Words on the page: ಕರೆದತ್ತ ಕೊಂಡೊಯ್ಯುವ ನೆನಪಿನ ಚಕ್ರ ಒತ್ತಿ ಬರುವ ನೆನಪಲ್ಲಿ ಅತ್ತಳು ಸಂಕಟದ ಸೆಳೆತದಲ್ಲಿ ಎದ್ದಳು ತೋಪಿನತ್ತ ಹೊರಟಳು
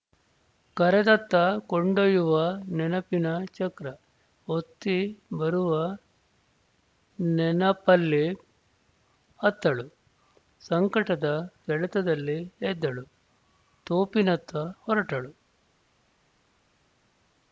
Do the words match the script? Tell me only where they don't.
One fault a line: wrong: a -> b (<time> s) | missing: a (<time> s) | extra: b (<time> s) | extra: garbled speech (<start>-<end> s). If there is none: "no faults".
no faults